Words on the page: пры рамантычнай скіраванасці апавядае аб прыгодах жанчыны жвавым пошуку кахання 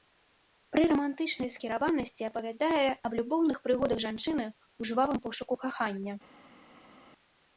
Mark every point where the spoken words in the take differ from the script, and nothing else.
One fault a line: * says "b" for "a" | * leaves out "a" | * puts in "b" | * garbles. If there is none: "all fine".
* puts in "любоўных"
* puts in "ў"